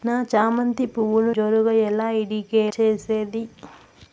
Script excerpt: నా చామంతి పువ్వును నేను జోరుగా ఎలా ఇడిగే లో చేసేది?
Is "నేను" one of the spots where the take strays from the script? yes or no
yes